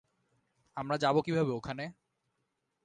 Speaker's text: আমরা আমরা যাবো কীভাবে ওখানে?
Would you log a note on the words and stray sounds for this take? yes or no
yes